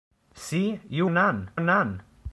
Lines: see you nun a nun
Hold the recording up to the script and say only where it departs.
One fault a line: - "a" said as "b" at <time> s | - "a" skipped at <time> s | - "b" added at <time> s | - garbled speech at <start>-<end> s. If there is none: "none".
none